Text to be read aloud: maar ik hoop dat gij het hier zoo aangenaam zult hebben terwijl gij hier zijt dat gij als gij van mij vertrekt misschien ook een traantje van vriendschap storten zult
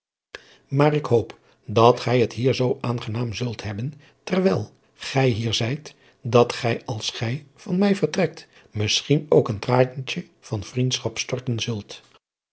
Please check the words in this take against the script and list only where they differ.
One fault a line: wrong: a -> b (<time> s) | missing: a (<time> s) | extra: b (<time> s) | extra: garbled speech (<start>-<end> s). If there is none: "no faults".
no faults